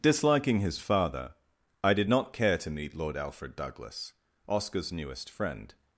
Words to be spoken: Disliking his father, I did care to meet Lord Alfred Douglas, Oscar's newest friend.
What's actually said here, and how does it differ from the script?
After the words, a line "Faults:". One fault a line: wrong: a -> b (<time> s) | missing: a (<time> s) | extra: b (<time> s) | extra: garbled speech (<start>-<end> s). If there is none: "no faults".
Disliking his father, I did not care to meet Lord Alfred Douglas, Oscar's newest friend.
Faults:
extra: not (2.1 s)